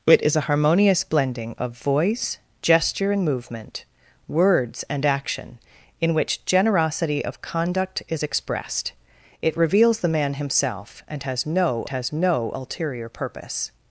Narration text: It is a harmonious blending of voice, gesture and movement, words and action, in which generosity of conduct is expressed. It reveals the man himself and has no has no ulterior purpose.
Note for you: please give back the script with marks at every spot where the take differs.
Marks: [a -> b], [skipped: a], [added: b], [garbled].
It is a harmonious blending of voice, gesture and movement, words and action, in which generosity of conduct is expressed. It reveals the man himself and has no has no ulterior purpose.